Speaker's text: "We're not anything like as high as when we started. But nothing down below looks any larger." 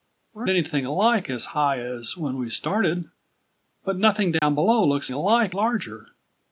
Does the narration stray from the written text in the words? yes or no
yes